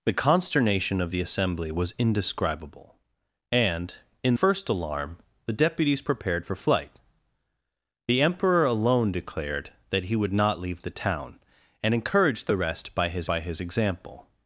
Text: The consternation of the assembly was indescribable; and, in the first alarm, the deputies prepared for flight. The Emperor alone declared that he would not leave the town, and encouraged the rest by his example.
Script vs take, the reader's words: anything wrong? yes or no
yes